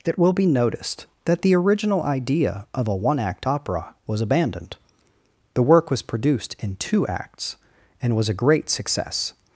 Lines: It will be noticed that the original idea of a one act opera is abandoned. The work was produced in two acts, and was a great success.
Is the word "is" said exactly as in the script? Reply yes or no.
no